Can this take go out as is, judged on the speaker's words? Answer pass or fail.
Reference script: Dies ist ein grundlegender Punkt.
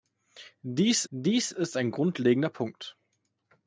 fail